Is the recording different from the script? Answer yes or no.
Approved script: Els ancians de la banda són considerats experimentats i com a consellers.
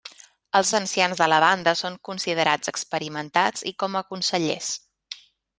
no